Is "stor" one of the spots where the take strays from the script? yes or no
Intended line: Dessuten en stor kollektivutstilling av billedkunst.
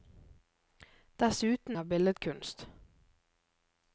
yes